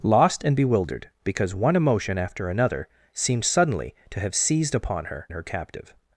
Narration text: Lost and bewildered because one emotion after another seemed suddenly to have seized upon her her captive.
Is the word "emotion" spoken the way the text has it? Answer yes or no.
yes